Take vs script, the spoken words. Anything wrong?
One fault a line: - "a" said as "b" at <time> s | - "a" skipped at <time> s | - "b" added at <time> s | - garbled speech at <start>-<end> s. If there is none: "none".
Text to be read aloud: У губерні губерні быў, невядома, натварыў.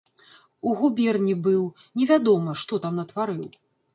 - "губерні" skipped at 1.4 s
- "што там" added at 2.6 s